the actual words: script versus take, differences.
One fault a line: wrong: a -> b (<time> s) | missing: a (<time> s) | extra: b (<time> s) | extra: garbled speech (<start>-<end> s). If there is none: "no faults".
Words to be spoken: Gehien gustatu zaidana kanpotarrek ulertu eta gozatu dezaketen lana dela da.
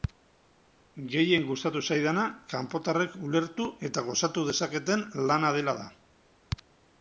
no faults